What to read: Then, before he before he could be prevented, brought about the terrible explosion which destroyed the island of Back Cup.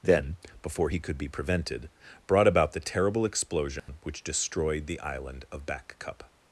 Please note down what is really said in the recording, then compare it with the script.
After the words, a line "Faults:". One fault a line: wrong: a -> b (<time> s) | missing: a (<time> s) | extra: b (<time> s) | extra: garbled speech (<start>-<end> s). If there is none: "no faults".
Then, before he could be prevented, brought about the terrible explosion which destroyed the island of Back Cup.
Faults:
missing: before he (1.0 s)